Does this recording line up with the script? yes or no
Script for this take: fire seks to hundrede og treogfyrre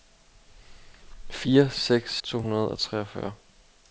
yes